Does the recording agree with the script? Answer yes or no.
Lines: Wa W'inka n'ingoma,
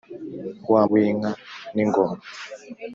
yes